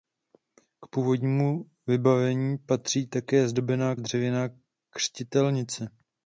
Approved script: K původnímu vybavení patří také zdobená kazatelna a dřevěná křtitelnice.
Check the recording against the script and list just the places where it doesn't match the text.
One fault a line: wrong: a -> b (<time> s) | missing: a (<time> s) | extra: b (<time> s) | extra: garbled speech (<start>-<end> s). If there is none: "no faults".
missing: kazatelna (3.9 s)